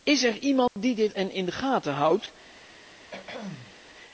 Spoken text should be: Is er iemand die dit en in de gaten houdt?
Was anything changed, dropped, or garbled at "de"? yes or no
no